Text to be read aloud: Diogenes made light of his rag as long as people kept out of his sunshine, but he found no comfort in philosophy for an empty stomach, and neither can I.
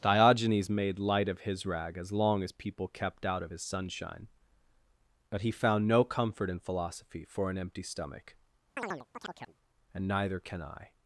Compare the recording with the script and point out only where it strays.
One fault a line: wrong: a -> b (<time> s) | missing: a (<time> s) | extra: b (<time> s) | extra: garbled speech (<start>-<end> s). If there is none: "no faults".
no faults